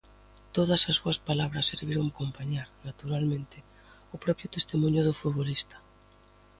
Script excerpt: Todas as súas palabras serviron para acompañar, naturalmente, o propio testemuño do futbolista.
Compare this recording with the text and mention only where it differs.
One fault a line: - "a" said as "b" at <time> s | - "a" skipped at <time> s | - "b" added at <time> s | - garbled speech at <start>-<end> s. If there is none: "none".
- "para" skipped at 2.1 s